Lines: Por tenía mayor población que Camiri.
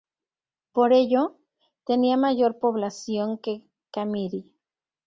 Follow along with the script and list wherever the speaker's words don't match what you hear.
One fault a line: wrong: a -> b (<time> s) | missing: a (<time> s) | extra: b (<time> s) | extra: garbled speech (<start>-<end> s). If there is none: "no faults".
extra: ello (0.9 s)